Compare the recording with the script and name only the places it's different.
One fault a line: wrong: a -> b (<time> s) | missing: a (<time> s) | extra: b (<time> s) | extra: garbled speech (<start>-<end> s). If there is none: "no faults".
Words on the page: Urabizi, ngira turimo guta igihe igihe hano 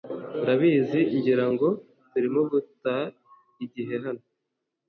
extra: ngo (1.5 s)
missing: igihe (3.9 s)